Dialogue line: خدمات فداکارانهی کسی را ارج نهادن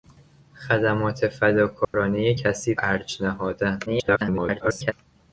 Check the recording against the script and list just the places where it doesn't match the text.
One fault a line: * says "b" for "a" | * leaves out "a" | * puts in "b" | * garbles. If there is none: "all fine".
* leaves out "را"
* garbles